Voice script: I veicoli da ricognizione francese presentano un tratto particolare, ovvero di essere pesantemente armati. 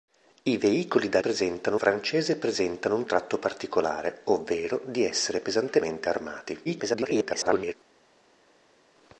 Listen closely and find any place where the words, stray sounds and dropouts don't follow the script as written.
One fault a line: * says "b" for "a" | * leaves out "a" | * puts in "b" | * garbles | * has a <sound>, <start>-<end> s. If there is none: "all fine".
* says "presentano" for "ricognizione"
* garbles